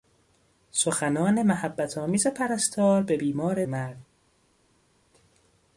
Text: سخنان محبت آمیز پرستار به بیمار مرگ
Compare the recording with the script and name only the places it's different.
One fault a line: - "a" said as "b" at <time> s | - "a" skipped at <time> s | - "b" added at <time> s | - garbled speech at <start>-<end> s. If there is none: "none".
none